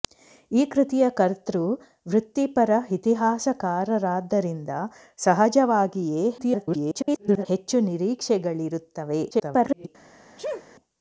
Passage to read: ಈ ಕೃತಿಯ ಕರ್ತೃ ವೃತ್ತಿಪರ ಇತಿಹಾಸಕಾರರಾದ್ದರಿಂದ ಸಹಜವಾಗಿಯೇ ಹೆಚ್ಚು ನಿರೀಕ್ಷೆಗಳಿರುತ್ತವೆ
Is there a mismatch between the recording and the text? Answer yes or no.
yes